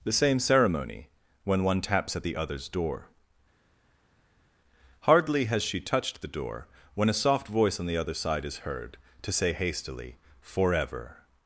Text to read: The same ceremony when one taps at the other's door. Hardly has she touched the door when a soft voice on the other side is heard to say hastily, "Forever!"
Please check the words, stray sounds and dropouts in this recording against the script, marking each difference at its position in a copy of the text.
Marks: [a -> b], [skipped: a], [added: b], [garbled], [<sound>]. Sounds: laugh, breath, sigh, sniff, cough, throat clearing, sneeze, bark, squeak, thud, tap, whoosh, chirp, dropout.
The same ceremony when one taps at the other's door. Hardly has she touched the door when a soft voice on the other side is heard to say hastily, "Forever!"